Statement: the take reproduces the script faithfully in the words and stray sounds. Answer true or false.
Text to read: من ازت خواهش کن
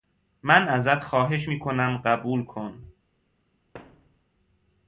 false